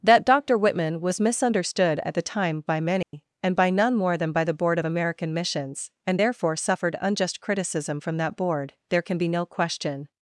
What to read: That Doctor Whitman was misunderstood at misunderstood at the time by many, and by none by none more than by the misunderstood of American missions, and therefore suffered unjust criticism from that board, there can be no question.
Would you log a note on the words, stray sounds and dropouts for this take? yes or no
yes